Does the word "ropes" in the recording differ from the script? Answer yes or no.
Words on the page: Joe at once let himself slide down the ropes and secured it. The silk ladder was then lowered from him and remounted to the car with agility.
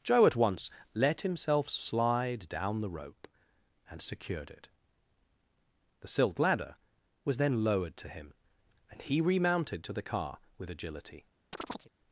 yes